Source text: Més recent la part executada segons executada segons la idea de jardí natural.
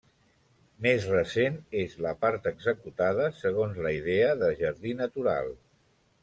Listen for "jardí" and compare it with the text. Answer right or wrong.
right